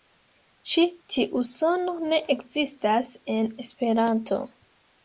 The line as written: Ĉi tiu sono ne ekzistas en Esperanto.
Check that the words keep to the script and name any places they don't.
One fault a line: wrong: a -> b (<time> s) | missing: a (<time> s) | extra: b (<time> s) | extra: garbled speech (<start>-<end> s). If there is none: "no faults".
no faults